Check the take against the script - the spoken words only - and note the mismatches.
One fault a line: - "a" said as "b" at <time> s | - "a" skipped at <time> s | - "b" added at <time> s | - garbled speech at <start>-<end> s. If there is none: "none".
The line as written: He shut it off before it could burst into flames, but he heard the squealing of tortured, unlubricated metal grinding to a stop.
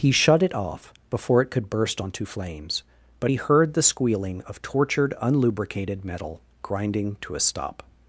- "into" said as "onto" at 2.0 s